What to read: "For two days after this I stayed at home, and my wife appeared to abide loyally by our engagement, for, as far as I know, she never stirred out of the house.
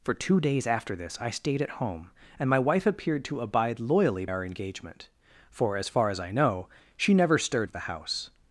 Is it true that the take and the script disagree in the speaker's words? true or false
true